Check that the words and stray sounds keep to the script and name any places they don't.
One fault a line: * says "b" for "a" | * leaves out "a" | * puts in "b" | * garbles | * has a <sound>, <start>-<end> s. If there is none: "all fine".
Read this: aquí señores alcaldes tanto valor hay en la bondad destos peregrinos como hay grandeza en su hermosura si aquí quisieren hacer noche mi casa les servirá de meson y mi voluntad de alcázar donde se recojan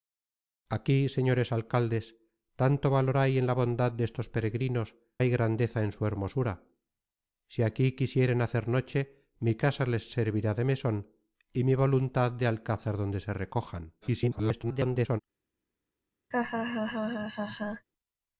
* leaves out "como"
* garbles
* has a laugh, 16.3-17.9 s